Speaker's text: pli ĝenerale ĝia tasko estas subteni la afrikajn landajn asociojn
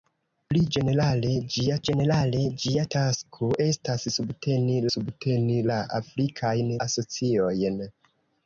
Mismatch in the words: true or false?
true